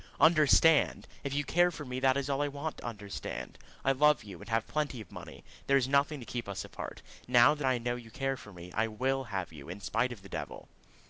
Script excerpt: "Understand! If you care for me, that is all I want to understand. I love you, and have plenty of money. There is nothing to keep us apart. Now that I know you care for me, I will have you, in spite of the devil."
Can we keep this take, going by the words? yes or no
yes